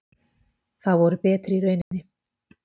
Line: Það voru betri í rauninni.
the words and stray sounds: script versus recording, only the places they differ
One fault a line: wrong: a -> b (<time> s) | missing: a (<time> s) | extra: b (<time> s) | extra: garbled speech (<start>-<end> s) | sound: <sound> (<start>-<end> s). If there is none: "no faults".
sound: dropout (1.8-1.9 s)